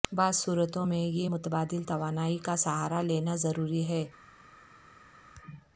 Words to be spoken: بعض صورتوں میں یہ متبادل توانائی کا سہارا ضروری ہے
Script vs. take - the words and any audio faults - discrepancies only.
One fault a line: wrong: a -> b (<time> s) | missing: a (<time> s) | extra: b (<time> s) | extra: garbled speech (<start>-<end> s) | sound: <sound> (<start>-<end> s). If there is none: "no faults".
extra: لینا (3.0 s)